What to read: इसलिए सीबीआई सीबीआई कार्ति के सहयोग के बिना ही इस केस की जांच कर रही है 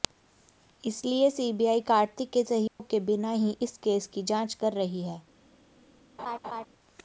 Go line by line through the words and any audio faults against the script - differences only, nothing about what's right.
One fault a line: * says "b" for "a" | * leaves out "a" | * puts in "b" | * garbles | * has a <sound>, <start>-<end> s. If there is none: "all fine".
* leaves out "सीबीआई"
* has a dropout, 2.7-2.8 s
* has a laugh, 6.2-6.7 s